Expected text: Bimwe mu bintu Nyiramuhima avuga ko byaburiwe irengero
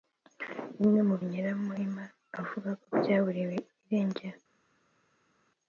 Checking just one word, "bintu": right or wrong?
wrong